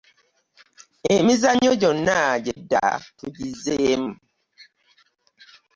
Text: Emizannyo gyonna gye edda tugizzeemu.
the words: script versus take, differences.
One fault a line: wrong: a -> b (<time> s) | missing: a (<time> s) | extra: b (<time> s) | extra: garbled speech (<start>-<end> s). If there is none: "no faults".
no faults